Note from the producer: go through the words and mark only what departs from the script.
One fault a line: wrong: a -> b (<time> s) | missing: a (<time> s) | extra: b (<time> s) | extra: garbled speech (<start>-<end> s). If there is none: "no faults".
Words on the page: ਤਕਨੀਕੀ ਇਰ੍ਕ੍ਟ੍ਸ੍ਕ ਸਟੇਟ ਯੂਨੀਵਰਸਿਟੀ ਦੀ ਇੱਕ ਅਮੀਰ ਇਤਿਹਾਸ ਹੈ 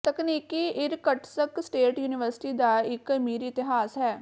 wrong: ਦੀ -> ਦਾ (2.5 s)